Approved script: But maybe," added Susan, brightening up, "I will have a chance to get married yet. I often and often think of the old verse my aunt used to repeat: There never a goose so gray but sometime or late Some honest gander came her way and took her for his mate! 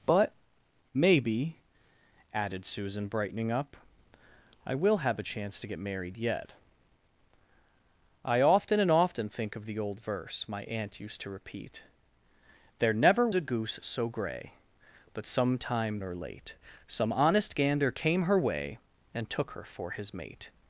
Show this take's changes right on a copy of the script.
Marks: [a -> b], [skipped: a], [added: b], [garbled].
But maybe," added Susan, brightening up, "I will have a chance to get married yet. I often and often think of the old verse my aunt used to repeat: There never a goose so gray but sometime or late Some honest gander came her way and took her for his mate!